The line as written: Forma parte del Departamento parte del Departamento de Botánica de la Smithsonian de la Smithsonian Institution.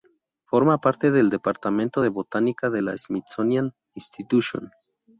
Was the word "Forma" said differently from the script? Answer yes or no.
no